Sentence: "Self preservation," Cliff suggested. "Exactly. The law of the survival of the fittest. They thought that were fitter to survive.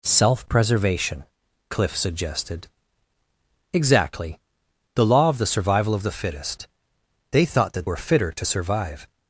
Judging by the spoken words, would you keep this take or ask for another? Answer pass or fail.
pass